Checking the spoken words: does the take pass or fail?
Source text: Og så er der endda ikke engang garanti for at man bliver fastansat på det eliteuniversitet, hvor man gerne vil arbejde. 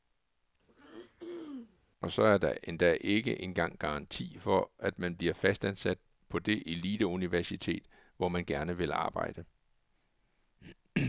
pass